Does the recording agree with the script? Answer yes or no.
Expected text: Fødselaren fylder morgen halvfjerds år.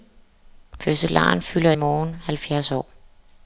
yes